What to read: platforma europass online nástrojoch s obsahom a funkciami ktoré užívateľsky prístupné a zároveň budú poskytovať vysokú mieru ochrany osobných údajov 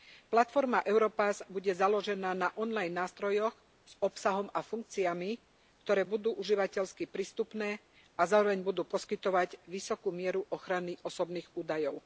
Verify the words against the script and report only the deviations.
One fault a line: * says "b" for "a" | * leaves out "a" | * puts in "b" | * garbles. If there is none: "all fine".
* puts in "bude založená na"
* puts in "budú"